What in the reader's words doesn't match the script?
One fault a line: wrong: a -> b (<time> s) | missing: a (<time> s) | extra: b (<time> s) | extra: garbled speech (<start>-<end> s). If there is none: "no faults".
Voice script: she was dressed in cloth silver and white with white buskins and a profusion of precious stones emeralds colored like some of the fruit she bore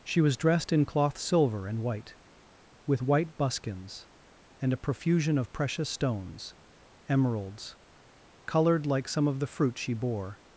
no faults